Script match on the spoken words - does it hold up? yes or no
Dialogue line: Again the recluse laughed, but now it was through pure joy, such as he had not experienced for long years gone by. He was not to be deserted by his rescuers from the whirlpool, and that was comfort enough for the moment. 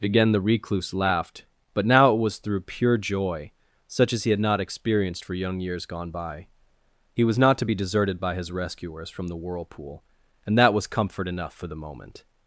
no